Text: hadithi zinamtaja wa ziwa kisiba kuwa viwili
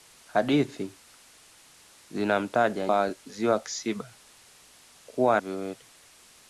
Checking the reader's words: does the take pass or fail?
pass